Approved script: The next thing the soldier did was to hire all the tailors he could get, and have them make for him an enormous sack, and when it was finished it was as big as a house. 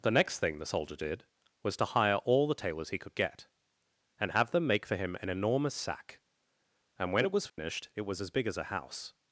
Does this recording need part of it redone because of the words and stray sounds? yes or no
yes